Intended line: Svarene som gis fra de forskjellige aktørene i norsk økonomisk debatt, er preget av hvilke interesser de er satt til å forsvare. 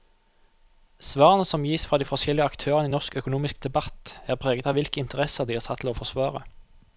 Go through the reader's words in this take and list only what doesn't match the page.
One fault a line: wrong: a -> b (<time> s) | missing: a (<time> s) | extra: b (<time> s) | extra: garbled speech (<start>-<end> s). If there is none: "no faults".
no faults